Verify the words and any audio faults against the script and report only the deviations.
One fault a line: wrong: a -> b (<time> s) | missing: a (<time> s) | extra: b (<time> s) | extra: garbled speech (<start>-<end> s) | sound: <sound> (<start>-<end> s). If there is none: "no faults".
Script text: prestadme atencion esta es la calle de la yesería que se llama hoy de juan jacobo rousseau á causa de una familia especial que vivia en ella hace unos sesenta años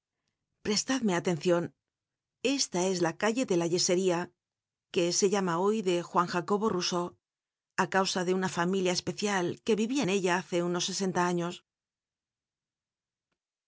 no faults